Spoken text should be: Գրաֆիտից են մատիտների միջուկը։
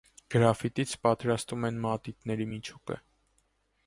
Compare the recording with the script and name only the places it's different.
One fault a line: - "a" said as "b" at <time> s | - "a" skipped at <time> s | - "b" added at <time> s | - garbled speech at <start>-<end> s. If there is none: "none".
- "պատրաստում" added at 1.1 s